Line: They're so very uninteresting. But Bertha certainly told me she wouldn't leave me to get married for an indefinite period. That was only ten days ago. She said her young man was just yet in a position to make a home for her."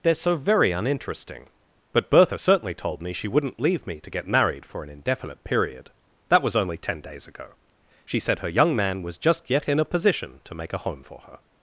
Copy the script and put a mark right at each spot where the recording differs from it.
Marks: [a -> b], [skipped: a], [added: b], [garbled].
They're so very uninteresting. But Bertha certainly told me she wouldn't leave me to get married for an indefinite period. That was only ten days ago. She said her young man was just yet in a position to make a home for her."